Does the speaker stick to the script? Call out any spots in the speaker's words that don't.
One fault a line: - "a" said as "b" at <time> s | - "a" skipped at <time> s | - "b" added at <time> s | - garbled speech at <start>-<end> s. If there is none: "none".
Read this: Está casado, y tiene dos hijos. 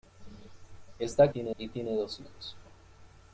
- "casado" said as "tiene" at 1.3 s